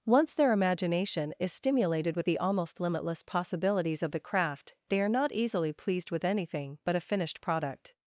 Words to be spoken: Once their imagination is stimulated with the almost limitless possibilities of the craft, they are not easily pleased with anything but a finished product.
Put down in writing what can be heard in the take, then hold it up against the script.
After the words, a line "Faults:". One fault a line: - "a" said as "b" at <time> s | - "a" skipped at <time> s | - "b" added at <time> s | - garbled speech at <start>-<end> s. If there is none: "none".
Once their imagination is stimulated with the almost limitless possibilities of the craft, they are not easily pleased with anything but a finished product.
Faults:
none